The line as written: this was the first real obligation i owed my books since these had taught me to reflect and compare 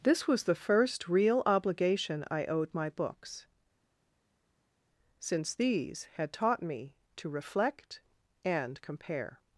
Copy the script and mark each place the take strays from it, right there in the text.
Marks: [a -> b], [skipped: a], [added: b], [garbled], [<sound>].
this was the first real obligation i owed my books since these had taught me to reflect and compare